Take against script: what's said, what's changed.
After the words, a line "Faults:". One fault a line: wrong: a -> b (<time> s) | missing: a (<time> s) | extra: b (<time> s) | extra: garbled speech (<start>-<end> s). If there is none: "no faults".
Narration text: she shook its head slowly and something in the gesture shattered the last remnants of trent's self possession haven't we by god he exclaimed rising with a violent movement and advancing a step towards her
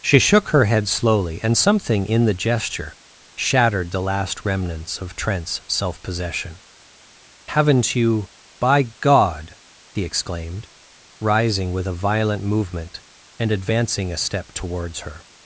she shook her head slowly and something in the gesture shattered the last remnants of trent's self possession haven't you by god he exclaimed rising with a violent movement and advancing a step towards her
Faults:
wrong: its -> her (0.5 s)
wrong: we -> you (8.0 s)